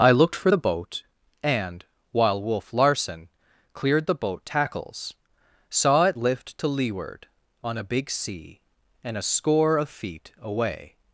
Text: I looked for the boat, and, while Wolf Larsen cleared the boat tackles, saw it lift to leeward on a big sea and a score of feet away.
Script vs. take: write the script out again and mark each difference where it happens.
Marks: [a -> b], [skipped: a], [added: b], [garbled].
I looked for the boat, and, while Wolf Larsen cleared the boat tackles, saw it lift to leeward on a big sea and a score of feet away.